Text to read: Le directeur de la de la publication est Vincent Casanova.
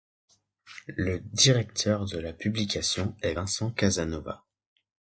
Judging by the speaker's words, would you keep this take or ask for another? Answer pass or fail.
fail